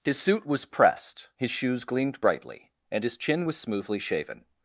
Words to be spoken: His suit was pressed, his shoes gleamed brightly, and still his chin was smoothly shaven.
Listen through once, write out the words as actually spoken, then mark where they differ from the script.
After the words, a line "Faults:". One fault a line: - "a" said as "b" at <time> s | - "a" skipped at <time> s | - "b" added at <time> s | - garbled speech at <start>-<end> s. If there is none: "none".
His suit was pressed, his shoes gleamed brightly, and his chin was smoothly shaven.
Faults:
- "still" skipped at 3.0 s